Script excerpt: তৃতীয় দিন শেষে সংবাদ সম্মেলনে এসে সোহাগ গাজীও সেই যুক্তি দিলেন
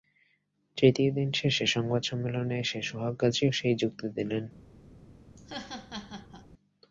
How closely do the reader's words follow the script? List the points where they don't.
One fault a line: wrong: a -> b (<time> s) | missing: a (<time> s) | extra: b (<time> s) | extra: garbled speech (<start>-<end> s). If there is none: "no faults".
no faults